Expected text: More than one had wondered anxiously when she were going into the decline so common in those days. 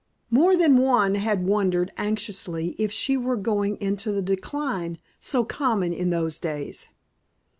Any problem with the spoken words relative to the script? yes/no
yes